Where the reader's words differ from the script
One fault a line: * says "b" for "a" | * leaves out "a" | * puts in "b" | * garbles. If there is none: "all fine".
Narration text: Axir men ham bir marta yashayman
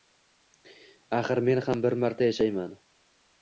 all fine